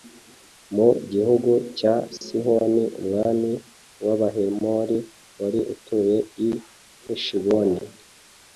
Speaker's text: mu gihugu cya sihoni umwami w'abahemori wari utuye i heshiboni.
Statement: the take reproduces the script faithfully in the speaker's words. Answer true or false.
true